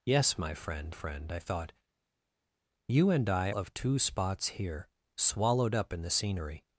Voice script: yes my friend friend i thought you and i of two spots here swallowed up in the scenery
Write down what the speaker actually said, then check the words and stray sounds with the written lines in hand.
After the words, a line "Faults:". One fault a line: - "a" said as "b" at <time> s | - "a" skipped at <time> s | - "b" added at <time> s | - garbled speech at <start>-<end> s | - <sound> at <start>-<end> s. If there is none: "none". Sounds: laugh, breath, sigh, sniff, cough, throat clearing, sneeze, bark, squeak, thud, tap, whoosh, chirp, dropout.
yes my friend friend i thought you and i of two spots here swallowed up in the scenery
Faults:
none